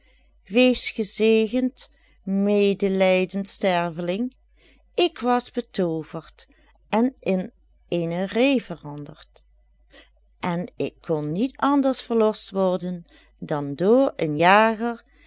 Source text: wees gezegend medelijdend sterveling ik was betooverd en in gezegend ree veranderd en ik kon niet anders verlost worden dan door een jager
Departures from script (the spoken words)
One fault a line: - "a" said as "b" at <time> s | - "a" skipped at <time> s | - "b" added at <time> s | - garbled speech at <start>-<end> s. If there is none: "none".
- "gezegend" said as "eene" at 7.9 s